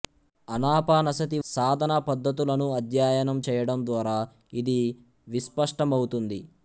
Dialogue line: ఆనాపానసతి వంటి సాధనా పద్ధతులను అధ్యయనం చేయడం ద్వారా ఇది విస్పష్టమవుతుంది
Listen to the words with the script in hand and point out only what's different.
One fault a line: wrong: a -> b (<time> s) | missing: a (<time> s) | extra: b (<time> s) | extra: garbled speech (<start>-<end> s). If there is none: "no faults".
missing: వంటి (1.4 s)